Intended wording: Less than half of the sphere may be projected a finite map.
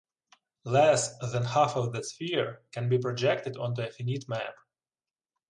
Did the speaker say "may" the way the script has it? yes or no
no